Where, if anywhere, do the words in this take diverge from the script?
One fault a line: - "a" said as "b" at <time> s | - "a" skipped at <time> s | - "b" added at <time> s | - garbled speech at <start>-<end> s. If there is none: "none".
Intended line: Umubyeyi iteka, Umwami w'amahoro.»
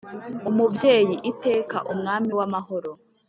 none